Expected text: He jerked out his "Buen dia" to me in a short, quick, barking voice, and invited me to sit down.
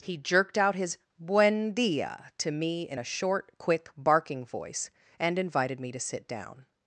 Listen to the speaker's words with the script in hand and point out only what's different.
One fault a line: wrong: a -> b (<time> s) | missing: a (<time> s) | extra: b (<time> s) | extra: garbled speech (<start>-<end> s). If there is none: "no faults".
no faults